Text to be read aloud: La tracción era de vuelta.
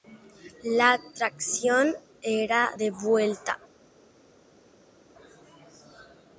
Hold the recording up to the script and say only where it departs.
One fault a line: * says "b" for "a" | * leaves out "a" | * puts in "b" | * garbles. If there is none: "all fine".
all fine